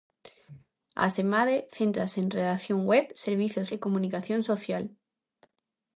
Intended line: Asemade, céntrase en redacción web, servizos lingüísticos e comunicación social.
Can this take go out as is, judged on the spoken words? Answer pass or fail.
fail